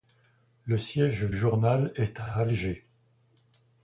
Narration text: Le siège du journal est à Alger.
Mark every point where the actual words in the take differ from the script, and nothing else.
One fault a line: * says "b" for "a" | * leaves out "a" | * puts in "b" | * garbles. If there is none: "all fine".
* leaves out "du"
* puts in "à"